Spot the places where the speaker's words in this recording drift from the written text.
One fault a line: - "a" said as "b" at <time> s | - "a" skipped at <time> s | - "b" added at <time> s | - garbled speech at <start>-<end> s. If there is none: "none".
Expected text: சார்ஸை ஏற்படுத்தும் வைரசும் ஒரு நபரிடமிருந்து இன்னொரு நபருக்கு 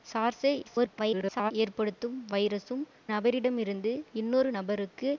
- garbled speech at 0.6-1.5 s
- "ஒரு" skipped at 2.8 s